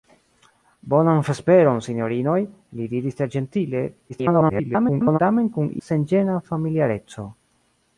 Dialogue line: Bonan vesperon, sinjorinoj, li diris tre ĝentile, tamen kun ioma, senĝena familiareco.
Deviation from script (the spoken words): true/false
true